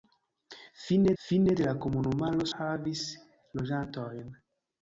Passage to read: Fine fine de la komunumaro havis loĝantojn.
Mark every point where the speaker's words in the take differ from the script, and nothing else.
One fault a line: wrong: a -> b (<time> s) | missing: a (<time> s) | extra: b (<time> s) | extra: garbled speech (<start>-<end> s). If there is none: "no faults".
no faults